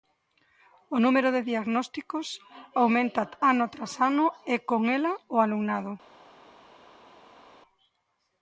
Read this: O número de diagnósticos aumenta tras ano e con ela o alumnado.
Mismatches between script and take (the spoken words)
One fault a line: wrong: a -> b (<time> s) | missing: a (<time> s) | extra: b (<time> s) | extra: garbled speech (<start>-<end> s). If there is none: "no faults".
extra: ano (3.5 s)